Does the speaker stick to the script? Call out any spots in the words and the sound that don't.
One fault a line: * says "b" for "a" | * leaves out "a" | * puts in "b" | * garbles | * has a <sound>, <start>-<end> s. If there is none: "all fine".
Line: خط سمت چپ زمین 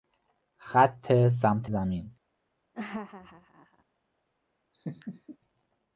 * leaves out "چپ"
* has a laugh, 2.7-3.8 s
* has a laugh, 4.7-5.4 s